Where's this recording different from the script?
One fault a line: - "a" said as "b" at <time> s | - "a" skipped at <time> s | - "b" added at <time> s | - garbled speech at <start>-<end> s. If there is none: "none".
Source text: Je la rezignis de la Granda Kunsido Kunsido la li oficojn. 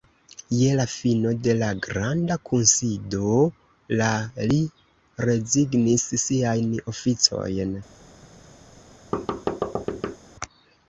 - "rezignis" said as "fino" at 0.9 s
- "Kunsido" skipped at 3.4 s
- "rezignis siajn" added at 5.3 s